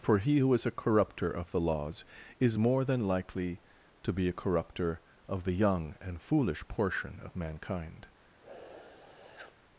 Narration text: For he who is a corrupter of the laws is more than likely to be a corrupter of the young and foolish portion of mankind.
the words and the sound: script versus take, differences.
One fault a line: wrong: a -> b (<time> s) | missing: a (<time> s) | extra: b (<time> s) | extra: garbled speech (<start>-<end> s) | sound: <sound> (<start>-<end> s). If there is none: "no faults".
sound: sniff (8.4-9.6 s)